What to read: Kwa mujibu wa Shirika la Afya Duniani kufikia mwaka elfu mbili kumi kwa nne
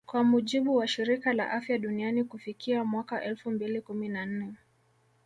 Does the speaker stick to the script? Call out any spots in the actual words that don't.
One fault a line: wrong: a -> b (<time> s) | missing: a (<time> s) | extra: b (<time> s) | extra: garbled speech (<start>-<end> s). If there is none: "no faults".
wrong: kwa -> na (4.1 s)